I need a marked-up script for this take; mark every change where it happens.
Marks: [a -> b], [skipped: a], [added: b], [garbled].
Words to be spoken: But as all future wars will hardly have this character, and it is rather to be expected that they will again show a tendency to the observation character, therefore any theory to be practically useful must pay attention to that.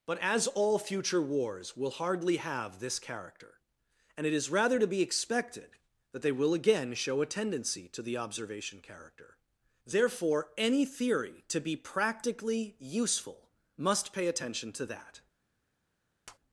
But as all future wars will hardly have this character, and it is rather to be expected that they will again show a tendency to the observation character, therefore any theory to be practically useful must pay attention to that.